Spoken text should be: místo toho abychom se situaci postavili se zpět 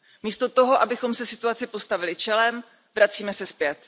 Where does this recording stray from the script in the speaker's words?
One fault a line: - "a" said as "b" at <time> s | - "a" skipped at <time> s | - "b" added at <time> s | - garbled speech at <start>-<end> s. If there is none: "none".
- "čelem vracíme" added at 2.1 s